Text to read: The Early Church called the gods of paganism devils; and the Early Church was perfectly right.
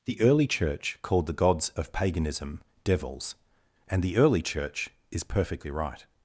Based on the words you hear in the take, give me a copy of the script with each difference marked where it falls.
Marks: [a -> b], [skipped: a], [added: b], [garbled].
The Early Church called the gods of paganism devils; and the Early Church [was -> is] perfectly right.